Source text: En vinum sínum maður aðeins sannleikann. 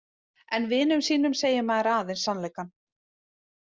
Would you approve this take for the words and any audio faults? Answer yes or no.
no